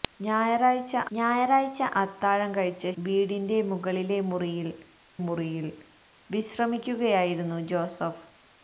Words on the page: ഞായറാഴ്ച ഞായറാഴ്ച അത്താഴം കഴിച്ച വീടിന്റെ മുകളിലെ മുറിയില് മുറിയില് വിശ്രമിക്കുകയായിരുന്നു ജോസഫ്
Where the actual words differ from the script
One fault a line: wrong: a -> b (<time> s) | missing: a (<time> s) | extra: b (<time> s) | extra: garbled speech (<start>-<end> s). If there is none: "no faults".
no faults